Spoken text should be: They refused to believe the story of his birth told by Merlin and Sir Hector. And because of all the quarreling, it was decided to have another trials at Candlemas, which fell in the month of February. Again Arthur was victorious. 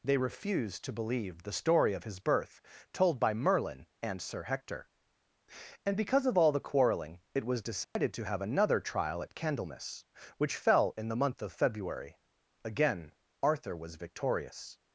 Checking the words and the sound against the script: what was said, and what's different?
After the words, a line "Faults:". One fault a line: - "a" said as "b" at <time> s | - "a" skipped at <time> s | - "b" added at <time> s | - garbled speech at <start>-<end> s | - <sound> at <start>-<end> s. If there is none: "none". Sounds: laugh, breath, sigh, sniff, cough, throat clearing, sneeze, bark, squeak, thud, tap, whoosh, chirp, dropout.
They refused to believe the story of his birth told by Merlin and Sir Hector. And because of all the quarreling, it was decided to have another trial at Candlemas, which fell in the month of February. Again Arthur was victorious.
Faults:
- dropout at 7.8-8.0 s
- "trials" said as "trial" at 8.8 s